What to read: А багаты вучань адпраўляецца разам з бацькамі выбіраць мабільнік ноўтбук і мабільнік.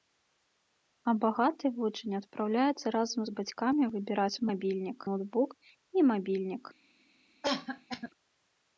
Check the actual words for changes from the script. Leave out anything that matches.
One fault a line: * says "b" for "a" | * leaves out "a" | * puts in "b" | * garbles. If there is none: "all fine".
all fine